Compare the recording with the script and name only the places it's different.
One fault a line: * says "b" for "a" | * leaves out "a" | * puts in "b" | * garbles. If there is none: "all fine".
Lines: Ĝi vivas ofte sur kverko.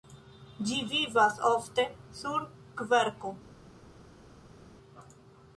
all fine